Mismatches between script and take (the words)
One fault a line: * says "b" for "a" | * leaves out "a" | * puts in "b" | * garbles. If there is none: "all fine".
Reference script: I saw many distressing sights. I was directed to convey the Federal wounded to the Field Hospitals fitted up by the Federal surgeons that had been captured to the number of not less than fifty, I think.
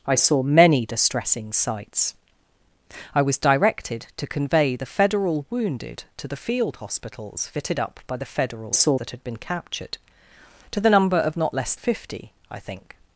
* says "saw" for "surgeons"
* leaves out "than"